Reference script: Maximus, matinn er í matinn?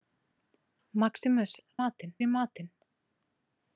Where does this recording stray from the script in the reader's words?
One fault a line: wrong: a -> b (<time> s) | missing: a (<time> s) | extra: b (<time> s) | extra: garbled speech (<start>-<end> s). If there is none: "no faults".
no faults